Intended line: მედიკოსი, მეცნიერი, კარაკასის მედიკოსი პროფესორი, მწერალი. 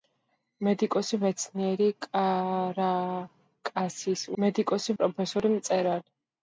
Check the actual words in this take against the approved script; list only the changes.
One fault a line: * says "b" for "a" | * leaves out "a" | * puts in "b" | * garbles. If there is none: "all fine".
all fine